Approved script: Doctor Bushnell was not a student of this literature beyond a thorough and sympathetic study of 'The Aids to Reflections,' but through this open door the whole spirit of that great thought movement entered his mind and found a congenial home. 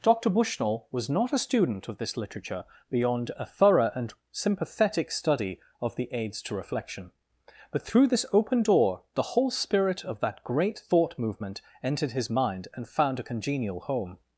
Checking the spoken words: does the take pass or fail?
fail